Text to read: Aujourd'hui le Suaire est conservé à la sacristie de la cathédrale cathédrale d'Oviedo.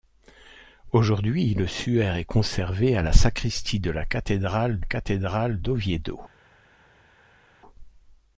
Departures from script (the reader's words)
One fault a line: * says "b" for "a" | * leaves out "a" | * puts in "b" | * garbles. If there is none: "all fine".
all fine